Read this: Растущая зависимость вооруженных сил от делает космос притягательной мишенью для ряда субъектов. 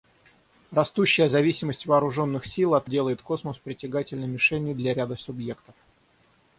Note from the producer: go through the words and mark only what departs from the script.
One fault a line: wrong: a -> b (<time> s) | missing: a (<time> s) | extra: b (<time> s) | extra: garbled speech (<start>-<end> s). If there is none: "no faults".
no faults